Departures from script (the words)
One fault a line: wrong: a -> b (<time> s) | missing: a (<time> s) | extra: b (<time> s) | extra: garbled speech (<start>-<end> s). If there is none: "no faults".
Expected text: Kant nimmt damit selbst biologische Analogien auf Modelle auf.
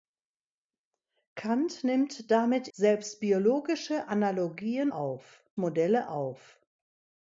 no faults